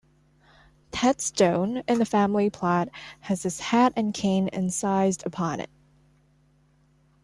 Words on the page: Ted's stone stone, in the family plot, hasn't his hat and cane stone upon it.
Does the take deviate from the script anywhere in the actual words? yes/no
yes